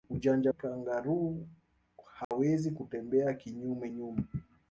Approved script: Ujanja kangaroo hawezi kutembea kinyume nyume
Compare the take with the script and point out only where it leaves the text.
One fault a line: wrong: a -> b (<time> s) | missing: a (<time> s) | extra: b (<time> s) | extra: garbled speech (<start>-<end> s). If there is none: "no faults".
no faults